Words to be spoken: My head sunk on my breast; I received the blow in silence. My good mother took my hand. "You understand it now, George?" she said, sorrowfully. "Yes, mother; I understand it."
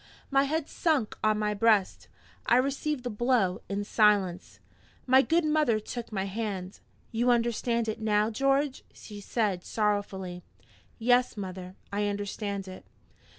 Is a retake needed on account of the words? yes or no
no